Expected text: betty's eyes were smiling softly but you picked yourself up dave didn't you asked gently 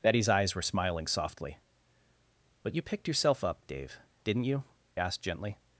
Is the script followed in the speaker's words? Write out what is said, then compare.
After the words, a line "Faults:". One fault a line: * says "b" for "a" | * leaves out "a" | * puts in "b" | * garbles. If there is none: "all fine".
betty's eyes were smiling softly but you picked yourself up dave didn't you asked gently
Faults:
all fine